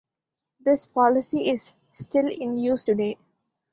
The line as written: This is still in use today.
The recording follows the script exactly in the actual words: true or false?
false